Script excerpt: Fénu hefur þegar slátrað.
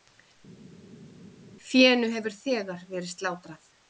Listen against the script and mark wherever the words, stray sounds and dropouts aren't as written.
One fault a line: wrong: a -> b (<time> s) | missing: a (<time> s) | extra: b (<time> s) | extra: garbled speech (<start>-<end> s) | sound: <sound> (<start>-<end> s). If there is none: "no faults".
extra: verið (3.0 s)